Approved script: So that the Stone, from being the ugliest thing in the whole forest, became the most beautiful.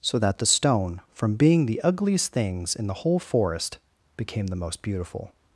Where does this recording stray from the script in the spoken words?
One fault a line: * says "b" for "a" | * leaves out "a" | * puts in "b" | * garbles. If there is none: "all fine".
* says "things" for "thing"